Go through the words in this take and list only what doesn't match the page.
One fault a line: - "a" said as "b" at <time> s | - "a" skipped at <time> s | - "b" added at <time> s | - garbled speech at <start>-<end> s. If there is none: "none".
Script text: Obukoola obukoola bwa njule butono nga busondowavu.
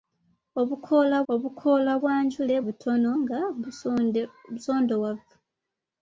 none